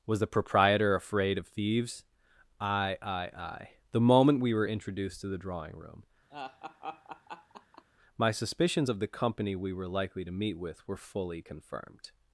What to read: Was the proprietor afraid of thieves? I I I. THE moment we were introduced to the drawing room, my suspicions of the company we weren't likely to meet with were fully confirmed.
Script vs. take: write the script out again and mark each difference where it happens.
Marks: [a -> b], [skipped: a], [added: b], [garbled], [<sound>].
Was the proprietor afraid of thieves? I I I. THE moment we were introduced to the drawing room, [laugh] my suspicions of the company we [weren't -> were] likely to meet with were fully confirmed.